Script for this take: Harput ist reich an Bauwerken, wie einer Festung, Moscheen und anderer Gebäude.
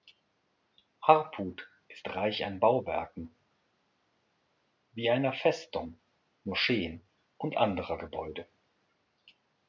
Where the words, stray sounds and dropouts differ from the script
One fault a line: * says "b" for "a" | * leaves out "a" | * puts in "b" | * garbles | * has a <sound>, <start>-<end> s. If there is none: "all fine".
all fine